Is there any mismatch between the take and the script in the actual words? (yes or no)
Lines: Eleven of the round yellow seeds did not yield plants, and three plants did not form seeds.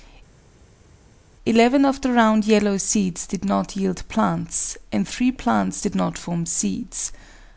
no